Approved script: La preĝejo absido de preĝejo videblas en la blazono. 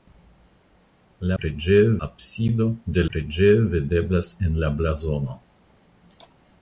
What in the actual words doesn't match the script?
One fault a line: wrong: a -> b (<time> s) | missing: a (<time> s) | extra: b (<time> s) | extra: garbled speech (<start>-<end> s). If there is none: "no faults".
no faults